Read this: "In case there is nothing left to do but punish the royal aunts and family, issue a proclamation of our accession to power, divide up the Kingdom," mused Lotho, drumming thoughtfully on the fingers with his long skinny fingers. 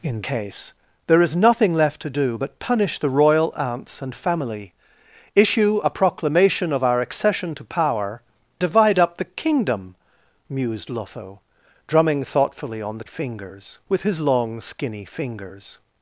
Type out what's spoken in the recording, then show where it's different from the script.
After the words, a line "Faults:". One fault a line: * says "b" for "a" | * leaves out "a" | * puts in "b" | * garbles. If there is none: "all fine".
"In case there is nothing left to do but punish the royal aunts and family, issue a proclamation of our accession to power, divide up the Kingdom," mused Lotho, drumming thoughtfully on the fingers with his long skinny fingers.
Faults:
all fine